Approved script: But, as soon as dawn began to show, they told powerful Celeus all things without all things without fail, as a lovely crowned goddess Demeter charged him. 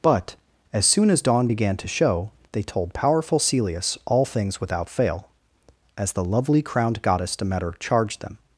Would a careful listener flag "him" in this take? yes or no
yes